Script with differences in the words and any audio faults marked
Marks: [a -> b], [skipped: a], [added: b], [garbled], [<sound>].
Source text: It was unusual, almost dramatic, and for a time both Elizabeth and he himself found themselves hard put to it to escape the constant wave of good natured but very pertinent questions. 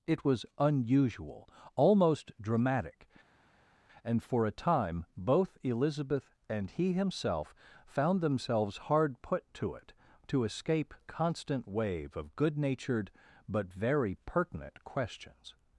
It was unusual, almost dramatic, and for a time both Elizabeth and he himself found themselves hard put to it to escape [skipped: the] constant wave of good natured but very pertinent questions.